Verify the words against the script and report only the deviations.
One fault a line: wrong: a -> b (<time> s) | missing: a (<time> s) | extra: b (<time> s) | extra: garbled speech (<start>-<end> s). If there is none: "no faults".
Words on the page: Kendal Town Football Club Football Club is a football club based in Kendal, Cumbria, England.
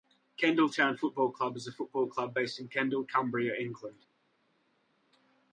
missing: Football Club (1.6 s)